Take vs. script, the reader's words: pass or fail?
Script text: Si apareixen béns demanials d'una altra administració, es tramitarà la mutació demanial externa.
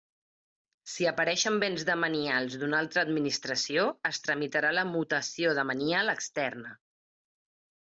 pass